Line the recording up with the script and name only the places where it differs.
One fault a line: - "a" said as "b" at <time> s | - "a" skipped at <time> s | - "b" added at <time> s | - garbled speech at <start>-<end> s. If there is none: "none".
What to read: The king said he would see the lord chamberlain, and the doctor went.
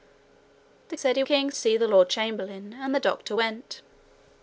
- "king" skipped at 1.0 s
- "would" said as "king" at 1.2 s